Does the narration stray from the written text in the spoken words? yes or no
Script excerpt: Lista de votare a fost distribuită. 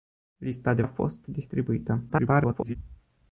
yes